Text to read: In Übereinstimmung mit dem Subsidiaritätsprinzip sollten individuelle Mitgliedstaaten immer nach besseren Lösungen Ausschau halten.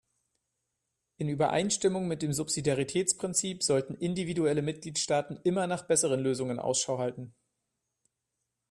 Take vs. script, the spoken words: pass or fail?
pass